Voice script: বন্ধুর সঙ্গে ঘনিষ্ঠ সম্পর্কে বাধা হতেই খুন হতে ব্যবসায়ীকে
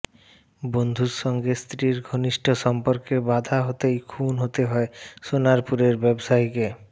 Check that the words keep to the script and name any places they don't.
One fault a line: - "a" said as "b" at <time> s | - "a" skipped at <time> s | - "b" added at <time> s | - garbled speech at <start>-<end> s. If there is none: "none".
- "স্ত্রীর" added at 1.6 s
- "হয় সোনারপুরের" added at 4.7 s